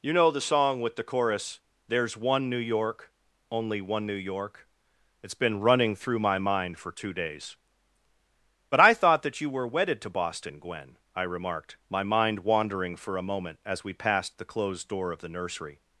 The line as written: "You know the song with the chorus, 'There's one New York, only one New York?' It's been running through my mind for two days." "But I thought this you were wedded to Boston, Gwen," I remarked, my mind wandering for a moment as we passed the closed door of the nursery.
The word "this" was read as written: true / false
false